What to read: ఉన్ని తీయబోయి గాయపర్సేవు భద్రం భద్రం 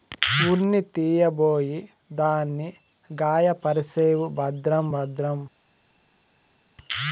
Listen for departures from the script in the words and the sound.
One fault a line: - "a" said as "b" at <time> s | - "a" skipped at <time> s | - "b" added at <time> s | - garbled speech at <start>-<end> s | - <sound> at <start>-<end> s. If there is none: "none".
- "దాన్ని" added at 2.2 s